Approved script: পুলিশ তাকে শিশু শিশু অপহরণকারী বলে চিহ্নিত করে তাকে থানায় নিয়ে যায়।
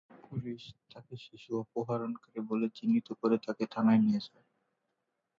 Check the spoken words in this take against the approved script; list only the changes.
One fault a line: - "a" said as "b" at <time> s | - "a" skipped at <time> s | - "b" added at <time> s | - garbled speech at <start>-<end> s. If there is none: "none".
- "শিশু" skipped at 1.5 s